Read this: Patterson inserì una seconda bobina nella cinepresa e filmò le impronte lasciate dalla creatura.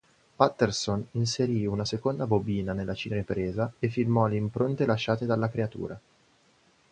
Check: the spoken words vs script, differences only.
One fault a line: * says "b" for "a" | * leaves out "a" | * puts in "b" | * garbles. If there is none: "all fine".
all fine